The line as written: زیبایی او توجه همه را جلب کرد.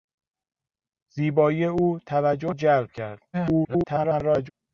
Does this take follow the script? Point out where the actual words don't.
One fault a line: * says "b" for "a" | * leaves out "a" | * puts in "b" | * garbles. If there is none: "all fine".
* leaves out "همه را"
* garbles